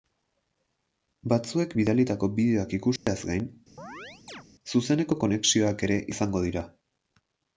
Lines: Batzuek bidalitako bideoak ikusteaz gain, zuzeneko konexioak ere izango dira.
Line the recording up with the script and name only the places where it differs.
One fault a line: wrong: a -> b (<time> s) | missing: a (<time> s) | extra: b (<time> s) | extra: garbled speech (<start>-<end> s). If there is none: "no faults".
no faults